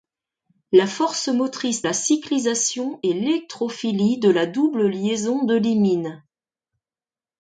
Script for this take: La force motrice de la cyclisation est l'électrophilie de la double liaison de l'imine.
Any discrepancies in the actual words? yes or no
yes